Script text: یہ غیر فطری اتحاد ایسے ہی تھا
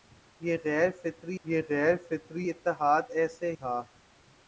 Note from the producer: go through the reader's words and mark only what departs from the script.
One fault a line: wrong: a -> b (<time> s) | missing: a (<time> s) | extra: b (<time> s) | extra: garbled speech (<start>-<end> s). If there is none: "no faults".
extra: یہ غیر فطری (1.4 s)
missing: ہی (3.5 s)